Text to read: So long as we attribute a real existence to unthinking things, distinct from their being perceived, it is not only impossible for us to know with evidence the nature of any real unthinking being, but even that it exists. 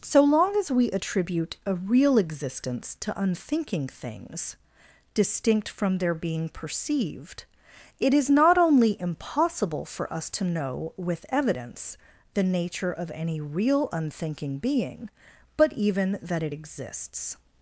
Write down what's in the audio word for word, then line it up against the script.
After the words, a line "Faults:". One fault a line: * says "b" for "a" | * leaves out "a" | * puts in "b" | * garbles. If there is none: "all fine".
So long as we attribute a real existence to unthinking things, distinct from their being perceived, it is not only impossible for us to know with evidence the nature of any real unthinking being, but even that it exists.
Faults:
all fine